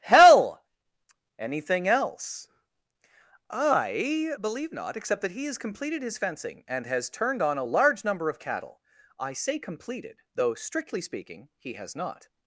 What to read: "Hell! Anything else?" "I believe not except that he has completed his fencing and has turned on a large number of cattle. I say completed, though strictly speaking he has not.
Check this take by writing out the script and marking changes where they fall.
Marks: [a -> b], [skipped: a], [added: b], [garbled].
"Hell! Anything else?" "I believe not except that he has completed his fencing and has turned on a large number of cattle. I say completed, though strictly speaking he has not.